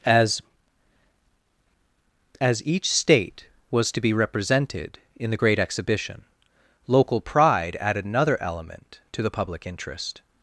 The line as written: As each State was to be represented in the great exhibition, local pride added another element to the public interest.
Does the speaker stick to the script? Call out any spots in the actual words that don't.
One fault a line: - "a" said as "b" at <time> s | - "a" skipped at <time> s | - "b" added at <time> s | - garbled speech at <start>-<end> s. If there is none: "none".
- "as" added at 2.4 s